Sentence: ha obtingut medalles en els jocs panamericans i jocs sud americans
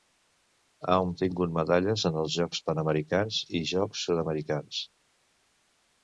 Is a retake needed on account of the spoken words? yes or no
no